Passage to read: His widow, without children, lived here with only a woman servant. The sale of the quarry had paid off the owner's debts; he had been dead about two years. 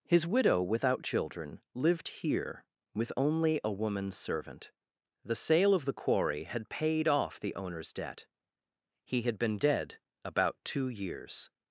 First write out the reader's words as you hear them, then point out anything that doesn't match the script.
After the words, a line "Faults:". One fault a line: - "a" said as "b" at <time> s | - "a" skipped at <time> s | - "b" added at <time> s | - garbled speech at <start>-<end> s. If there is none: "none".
His widow, without children, lived here with only a woman servant. The sale of the quarry had paid off the owner's debt; he had been dead about two years.
Faults:
- "debts" said as "debt" at 7.9 s